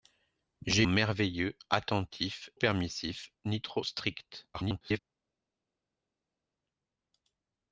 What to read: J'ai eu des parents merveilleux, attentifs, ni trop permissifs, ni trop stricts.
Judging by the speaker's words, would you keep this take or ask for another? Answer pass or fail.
fail